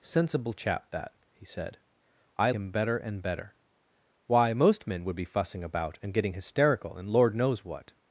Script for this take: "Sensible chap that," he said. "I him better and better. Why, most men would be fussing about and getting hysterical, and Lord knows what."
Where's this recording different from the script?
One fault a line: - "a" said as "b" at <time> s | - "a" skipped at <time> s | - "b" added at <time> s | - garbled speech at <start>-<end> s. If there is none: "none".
none